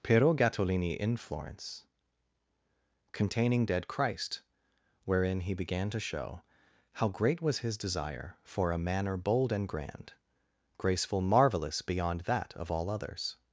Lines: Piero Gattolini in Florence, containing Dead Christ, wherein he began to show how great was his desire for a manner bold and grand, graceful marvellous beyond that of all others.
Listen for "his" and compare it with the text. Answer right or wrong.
right